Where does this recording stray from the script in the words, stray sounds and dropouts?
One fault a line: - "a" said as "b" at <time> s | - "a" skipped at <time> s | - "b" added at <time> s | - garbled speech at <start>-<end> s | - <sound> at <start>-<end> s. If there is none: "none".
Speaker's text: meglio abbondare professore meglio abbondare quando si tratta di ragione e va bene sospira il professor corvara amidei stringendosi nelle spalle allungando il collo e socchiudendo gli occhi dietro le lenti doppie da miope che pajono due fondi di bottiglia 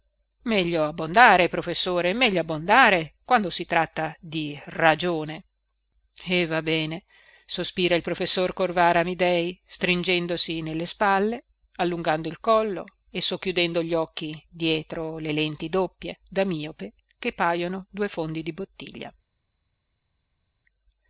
none